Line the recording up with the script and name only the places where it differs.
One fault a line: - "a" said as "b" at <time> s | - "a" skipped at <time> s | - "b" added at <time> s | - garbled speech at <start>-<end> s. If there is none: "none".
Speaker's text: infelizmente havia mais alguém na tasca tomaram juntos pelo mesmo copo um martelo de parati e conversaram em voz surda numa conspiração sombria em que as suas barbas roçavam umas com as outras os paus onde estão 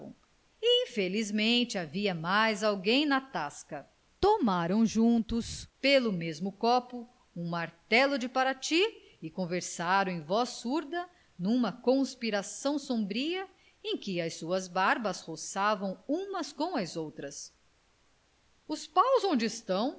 none